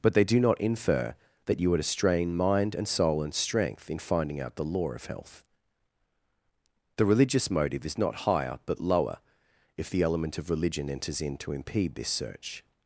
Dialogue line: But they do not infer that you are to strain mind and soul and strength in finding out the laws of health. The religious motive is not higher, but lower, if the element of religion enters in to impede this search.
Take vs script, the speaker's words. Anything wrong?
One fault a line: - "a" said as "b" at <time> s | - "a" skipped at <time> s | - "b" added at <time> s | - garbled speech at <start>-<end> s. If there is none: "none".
- "laws" said as "law" at 4.6 s